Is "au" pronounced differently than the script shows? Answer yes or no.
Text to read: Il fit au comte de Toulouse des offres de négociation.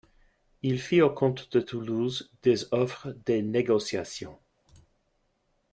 no